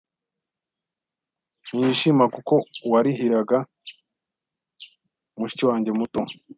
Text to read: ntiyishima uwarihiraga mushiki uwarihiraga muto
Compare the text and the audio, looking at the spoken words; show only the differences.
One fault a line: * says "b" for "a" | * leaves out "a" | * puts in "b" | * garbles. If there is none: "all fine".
* puts in "kuko"
* says "wanjye" for "uwarihiraga"